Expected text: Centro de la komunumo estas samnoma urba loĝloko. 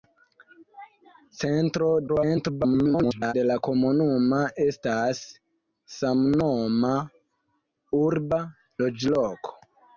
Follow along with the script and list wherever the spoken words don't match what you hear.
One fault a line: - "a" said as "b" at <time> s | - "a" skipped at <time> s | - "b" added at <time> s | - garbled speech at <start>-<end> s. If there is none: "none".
- garbled speech at 2.1-3.3 s